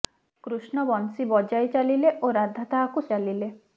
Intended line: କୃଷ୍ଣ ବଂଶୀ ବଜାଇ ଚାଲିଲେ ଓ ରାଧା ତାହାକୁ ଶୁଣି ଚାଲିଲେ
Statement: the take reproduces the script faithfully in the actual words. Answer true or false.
false